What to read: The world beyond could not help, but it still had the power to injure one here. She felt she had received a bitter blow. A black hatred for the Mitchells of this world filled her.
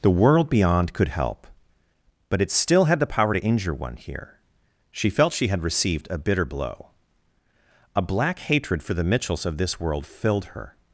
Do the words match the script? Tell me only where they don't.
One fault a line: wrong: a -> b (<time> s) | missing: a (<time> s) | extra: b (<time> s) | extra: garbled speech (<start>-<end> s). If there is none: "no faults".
missing: not (1.1 s)